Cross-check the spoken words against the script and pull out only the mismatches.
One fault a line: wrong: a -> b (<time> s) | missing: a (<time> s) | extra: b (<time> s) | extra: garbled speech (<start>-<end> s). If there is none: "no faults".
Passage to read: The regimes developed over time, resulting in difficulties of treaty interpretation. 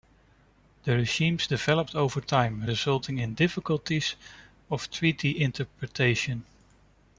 no faults